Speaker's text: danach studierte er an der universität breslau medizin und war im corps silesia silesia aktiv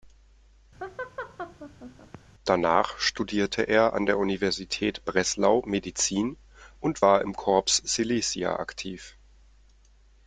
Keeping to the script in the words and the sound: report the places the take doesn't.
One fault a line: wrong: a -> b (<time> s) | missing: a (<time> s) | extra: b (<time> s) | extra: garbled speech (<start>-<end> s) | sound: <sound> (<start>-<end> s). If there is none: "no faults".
sound: laugh (0.8-2.2 s)
missing: silesia (8.6 s)